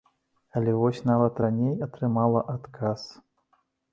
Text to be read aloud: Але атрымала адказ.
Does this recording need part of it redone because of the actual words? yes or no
yes